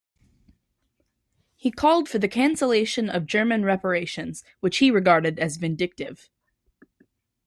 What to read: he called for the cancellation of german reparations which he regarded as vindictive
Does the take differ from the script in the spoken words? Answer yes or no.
no